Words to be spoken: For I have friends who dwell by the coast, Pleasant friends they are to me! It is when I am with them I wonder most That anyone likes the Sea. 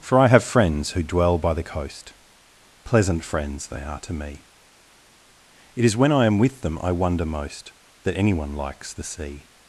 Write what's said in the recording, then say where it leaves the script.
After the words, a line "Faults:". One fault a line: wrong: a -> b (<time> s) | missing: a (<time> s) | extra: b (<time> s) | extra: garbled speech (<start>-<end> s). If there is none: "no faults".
For I have friends who dwell by the coast, Pleasant friends they are to me! It is when I am with them I wonder most That anyone likes the Sea.
Faults:
no faults